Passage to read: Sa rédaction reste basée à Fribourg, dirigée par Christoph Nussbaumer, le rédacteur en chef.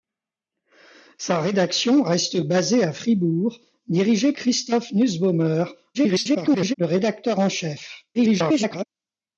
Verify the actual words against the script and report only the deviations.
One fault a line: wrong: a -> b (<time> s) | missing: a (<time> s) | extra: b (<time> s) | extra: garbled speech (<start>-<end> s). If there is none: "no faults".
missing: par (4.3 s)
extra: garbled speech (5.9-6.7 s)
extra: garbled speech (8.1-8.9 s)